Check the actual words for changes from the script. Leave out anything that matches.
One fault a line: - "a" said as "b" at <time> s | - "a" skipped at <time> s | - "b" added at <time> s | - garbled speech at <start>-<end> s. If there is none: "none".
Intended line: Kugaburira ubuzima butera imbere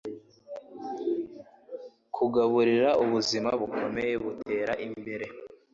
- "bukomeye" added at 3.6 s